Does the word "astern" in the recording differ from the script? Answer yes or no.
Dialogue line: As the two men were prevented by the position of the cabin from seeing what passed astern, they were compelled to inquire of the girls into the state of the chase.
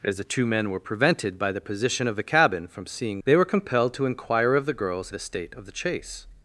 yes